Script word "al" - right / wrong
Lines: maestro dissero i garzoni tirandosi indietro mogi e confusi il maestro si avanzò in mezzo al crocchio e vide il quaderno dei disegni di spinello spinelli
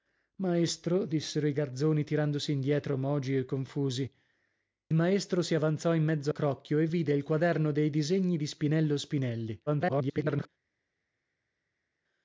wrong